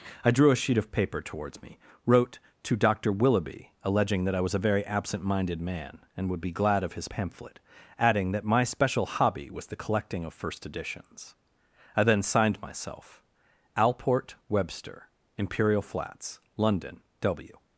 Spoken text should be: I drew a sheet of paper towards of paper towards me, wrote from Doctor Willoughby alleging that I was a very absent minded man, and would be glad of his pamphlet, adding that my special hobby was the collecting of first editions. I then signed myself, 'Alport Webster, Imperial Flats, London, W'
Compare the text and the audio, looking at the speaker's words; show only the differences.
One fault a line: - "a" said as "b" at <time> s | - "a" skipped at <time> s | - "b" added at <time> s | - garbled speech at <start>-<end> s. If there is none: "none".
- "of paper towards" skipped at 1.6 s
- "from" said as "to" at 2.6 s